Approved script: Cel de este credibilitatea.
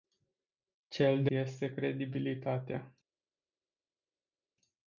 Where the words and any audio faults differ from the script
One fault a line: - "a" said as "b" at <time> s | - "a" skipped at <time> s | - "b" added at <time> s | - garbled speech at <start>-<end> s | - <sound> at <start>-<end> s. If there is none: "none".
none